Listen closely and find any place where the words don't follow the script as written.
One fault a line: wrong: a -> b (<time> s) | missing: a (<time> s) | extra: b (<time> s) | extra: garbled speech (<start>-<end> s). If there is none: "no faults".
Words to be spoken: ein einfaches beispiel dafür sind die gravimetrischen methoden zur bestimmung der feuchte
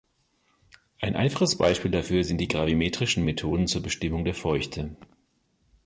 no faults